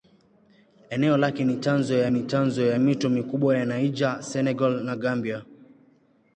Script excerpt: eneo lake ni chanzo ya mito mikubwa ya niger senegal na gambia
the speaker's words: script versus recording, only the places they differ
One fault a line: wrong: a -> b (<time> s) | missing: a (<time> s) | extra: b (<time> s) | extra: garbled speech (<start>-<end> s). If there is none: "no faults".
extra: ni chanzo ya (2.1 s)